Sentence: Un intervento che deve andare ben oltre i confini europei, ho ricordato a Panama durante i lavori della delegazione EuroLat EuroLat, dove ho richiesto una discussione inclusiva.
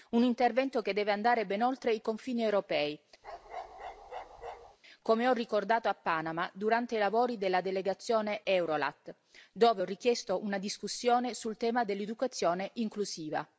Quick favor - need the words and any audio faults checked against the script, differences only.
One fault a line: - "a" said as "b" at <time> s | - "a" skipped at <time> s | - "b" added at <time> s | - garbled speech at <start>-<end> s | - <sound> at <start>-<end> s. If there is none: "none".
- bark at 3.2-4.8 s
- "come" added at 5.0 s
- "EuroLat" skipped at 9.1 s
- "sul tema dell'educazione" added at 11.3 s